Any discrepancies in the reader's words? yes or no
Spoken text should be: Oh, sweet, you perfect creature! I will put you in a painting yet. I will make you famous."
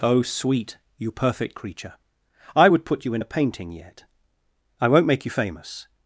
yes